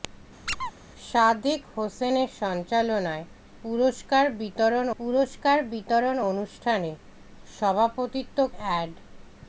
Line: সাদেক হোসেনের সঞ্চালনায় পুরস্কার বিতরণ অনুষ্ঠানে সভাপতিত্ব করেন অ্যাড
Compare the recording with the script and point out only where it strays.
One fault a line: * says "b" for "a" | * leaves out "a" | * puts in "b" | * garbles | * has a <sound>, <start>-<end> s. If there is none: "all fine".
* has a squeak, 0.5-0.7 s
* puts in "পুরস্কার বিতরণ"
* leaves out "করেন"